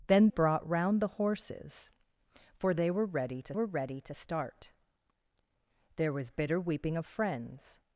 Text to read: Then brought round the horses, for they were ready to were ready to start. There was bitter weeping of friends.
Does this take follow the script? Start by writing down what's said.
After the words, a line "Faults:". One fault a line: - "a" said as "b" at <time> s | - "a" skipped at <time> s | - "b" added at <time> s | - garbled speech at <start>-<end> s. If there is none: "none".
Then brought round the horses, for they were ready to were ready to start. There was bitter weeping of friends.
Faults:
none